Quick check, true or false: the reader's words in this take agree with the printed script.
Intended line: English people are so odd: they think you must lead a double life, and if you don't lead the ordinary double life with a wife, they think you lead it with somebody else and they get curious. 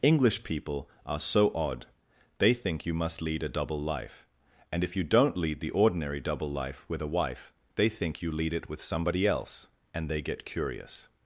true